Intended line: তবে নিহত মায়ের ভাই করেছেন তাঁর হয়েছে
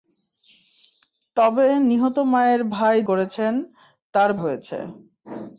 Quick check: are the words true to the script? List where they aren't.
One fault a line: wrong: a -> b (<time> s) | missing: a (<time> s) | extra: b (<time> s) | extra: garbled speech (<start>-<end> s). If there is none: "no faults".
no faults